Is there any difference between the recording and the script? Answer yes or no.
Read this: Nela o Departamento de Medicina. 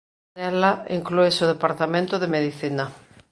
yes